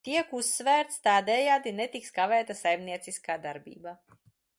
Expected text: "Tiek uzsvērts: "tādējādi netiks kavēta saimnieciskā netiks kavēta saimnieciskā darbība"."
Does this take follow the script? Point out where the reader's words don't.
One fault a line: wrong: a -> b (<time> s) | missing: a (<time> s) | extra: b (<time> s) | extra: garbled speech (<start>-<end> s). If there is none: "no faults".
missing: netiks kavēta saimnieciskā (3.4 s)